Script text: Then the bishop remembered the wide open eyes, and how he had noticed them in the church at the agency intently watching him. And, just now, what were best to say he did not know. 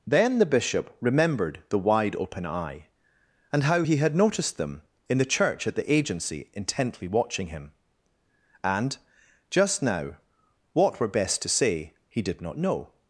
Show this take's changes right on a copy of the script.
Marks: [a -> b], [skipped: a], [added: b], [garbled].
Then the bishop remembered the wide open [eyes, -> eye] and how he had noticed them in the church at the agency intently watching him. And, just now, what were best to say he did not know.